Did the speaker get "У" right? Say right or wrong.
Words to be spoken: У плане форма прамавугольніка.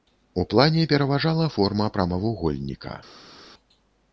right